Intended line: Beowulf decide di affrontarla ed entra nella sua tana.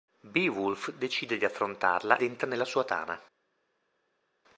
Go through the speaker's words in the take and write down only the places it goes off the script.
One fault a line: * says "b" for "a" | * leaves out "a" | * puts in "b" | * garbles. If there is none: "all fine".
* leaves out "ed"